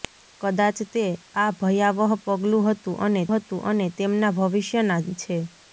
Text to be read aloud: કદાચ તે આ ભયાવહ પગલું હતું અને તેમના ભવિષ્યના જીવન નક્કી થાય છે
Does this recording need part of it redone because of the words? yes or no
yes